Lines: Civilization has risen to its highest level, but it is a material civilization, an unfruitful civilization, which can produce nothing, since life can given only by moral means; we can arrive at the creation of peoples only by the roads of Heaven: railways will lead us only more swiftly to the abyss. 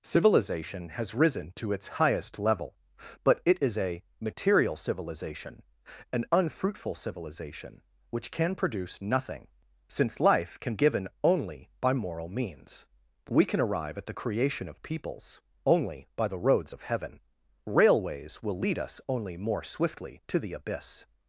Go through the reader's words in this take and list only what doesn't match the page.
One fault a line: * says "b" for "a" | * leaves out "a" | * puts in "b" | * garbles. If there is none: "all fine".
all fine